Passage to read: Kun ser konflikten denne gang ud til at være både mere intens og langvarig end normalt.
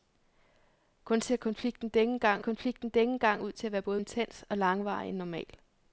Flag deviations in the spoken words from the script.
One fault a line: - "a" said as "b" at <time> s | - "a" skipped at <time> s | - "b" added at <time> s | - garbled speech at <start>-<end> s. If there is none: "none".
- "konflikten denne gang" added at 2.4 s
- "mere" skipped at 4.0 s